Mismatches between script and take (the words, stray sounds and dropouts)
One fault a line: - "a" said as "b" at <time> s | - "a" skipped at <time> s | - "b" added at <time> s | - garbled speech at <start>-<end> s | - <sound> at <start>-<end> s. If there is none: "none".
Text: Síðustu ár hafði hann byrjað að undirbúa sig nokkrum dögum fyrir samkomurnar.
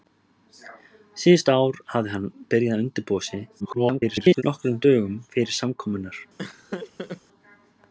- garbled speech at 3.6-4.4 s
- laugh at 6.4-7.2 s